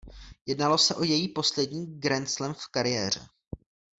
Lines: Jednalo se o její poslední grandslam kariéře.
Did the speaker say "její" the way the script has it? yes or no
yes